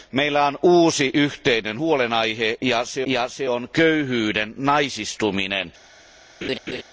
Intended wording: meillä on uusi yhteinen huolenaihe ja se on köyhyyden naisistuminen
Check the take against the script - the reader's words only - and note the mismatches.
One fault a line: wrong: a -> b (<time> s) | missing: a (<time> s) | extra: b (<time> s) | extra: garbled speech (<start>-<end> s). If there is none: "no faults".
extra: ja se (3.1 s)